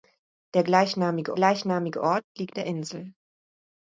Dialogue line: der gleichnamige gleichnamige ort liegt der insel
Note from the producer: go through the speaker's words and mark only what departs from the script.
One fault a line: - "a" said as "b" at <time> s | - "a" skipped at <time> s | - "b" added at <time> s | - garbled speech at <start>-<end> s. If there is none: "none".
none